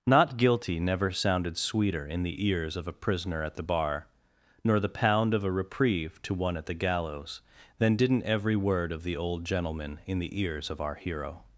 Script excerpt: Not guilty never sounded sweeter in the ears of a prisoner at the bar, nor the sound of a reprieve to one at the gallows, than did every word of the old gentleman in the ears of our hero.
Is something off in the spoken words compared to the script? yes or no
yes